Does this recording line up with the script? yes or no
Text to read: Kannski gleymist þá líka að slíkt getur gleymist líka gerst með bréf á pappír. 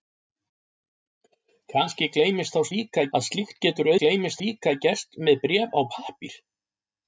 yes